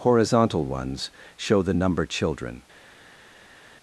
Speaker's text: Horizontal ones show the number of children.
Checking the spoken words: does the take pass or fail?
fail